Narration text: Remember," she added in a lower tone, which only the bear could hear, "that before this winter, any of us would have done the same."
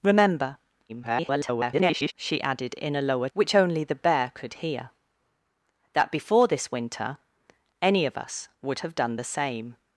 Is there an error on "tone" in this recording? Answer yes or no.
yes